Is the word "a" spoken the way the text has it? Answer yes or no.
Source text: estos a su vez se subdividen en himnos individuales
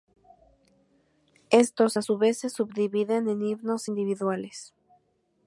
yes